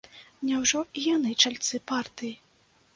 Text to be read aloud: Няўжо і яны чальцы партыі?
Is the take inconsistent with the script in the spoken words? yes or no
no